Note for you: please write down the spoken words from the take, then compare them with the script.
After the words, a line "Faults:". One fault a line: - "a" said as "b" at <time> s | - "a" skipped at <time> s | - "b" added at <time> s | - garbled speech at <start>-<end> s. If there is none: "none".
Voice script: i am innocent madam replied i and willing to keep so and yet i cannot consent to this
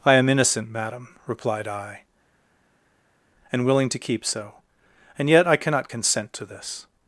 i am innocent madam replied i and willing to keep so and yet i cannot consent to this
Faults:
none